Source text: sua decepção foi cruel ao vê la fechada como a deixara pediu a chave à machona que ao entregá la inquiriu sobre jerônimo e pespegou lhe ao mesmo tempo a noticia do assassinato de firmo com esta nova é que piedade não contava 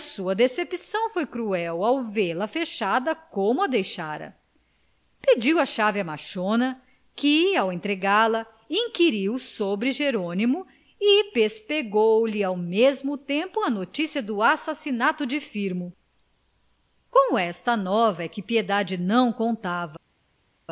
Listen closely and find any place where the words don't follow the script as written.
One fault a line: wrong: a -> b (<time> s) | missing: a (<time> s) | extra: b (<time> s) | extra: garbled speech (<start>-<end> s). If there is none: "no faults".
no faults